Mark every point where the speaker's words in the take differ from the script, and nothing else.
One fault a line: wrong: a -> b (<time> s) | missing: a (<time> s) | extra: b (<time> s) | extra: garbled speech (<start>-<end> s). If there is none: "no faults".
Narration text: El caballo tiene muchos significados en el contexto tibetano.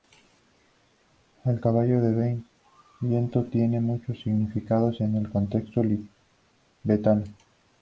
extra: de viento (2.0 s)